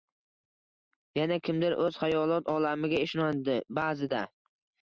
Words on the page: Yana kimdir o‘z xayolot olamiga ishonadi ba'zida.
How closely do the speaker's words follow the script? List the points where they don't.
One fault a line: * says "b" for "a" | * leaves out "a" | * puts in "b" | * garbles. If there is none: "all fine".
all fine